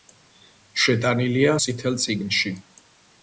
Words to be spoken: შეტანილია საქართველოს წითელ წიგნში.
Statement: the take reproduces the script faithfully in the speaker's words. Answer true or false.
false